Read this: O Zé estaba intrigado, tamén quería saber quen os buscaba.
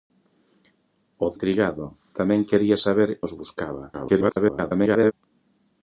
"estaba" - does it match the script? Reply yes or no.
no